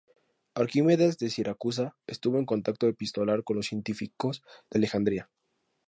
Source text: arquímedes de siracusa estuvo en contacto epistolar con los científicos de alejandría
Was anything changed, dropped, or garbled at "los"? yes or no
no